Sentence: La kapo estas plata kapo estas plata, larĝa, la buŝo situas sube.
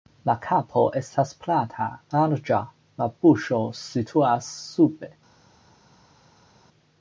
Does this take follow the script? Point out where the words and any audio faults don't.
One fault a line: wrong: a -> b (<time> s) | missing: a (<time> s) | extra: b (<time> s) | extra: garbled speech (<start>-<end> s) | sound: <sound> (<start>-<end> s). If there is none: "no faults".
missing: kapo estas plata (1.9 s)